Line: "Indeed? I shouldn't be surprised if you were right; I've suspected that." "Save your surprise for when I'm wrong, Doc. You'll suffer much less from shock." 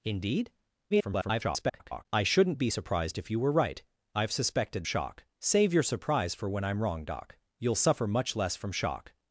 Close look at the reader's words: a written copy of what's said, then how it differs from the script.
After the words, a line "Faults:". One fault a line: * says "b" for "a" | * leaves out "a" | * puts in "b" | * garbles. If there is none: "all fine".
"Indeed? [garbled] I shouldn't be surprised if you were right; I've suspected shock." "Save your surprise for when I'm wrong, Doc. You'll suffer much less from shock."
Faults:
* garbles
* says "shock" for "that"